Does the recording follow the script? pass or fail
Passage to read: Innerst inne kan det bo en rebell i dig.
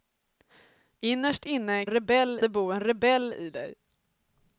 fail